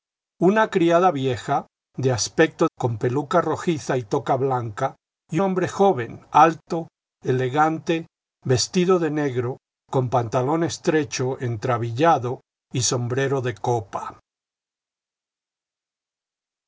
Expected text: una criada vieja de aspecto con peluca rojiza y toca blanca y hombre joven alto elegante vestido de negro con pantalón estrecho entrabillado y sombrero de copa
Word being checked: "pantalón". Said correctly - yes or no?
yes